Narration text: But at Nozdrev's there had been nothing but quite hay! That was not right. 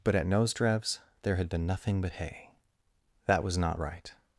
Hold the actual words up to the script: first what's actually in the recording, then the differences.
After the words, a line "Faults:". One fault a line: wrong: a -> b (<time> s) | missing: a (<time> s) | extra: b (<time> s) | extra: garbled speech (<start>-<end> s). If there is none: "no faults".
But at Nozdrev's there had been nothing but hay! That was not right.
Faults:
missing: quite (2.1 s)